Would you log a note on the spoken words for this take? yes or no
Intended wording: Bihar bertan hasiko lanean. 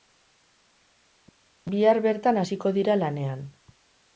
yes